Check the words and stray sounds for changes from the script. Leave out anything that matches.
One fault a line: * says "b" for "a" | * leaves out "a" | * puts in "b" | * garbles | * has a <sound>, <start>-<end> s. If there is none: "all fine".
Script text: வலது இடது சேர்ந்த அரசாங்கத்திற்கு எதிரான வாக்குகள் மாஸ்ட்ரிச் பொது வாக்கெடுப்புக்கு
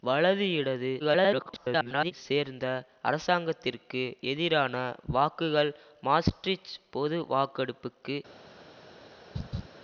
* garbles
* has a laugh, 9.3-9.7 s